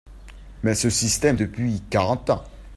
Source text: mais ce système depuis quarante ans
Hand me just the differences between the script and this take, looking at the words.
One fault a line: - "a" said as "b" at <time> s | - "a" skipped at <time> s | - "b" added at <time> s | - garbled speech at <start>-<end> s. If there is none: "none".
none